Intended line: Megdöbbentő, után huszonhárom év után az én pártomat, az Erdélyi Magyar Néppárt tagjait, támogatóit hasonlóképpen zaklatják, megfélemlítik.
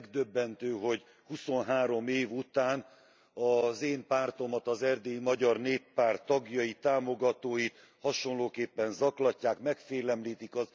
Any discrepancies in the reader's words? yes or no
yes